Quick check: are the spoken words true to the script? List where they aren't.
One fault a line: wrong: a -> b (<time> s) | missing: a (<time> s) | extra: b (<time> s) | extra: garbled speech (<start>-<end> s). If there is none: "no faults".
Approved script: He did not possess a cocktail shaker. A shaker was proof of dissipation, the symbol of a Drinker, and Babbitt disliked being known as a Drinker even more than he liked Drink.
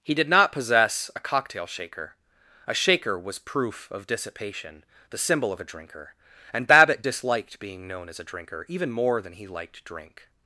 no faults